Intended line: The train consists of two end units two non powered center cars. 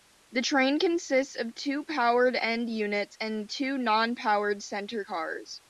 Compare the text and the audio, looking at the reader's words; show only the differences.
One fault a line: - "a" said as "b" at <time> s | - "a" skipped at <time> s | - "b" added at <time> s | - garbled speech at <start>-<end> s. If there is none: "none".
- "powered" added at 1.8 s
- "and" added at 3.2 s